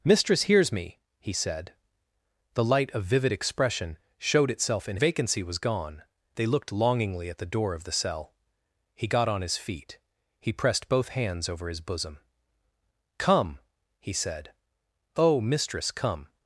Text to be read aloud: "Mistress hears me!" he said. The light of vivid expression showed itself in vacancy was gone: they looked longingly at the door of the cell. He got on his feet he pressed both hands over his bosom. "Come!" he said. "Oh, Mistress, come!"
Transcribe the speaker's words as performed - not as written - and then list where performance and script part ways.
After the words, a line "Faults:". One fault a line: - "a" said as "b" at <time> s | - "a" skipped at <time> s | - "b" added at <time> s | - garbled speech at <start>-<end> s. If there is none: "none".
"Mistress hears me!" he said. The light of vivid expression showed itself in vacancy was gone: they looked longingly at the door of the cell. He got on his feet he pressed both hands over his bosom. "Come!" he said. "Oh, Mistress, come!"
Faults:
none